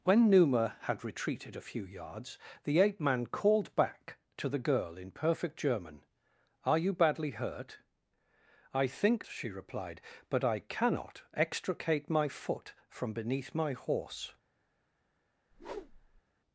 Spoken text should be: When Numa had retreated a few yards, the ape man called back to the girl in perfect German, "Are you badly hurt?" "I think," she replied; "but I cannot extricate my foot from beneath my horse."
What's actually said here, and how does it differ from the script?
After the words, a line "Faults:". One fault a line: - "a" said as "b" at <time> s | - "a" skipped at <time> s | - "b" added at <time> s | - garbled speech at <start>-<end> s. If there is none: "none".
When Numa had retreated a few yards, the ape man called back to the girl in perfect German, "Are you badly hurt?" "I think," she replied; "but I cannot extricate my foot from beneath my horse."
Faults:
none